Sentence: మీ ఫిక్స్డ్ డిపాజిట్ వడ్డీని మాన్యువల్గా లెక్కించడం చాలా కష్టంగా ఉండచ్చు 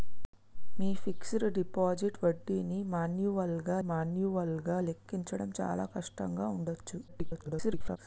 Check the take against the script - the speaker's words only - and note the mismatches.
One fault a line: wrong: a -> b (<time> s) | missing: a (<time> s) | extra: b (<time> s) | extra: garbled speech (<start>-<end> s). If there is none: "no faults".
extra: మాన్యువల్గా (3.9 s)
extra: garbled speech (7.1-8.0 s)